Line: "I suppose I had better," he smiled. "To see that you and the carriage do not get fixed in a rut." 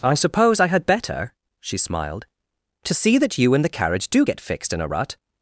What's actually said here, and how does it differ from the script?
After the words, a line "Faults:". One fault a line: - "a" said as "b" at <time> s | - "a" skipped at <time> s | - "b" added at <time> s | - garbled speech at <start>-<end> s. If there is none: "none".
"I suppose I had better," she smiled. "To see that you and the carriage do get fixed in a rut."
Faults:
- "he" said as "she" at 1.6 s
- "not" skipped at 4.2 s